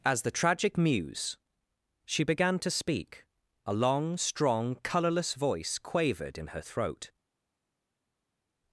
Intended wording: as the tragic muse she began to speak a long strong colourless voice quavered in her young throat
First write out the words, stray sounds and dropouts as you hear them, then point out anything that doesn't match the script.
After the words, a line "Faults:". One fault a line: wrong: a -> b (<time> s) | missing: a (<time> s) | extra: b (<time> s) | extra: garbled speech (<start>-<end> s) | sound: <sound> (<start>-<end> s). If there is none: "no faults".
as the tragic muse she began to speak a long strong colourless voice quavered in her throat
Faults:
missing: young (6.6 s)